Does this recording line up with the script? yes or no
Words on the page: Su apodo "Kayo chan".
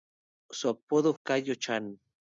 yes